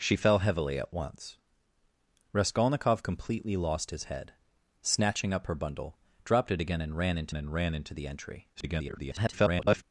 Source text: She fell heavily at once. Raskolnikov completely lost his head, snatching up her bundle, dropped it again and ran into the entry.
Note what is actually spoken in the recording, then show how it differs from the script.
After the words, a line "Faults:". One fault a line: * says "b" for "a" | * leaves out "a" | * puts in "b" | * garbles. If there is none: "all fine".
She fell heavily at once. Raskolnikov completely lost his head, snatching up her bundle, dropped it again and ran into and ran into the entry. [garbled]
Faults:
* puts in "and ran into"
* garbles